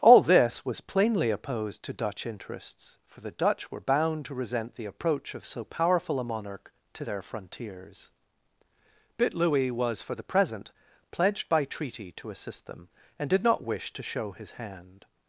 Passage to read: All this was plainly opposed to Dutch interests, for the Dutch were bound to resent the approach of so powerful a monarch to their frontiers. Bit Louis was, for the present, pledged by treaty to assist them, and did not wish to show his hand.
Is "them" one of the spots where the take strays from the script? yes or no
no